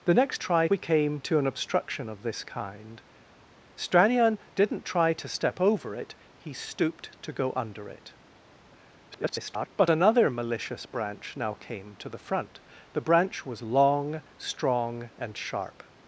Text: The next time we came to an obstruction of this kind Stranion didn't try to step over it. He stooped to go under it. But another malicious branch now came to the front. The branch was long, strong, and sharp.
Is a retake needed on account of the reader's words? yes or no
yes